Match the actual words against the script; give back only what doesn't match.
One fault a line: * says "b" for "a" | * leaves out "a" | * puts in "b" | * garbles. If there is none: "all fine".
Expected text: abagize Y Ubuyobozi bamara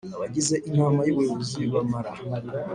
* puts in "Inama"